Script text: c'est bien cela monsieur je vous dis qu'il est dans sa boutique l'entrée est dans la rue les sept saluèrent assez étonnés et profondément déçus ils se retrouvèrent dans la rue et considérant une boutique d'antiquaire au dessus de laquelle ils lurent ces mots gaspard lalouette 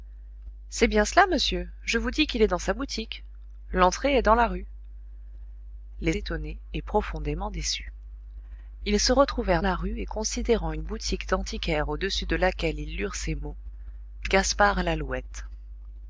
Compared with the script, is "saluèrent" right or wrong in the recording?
wrong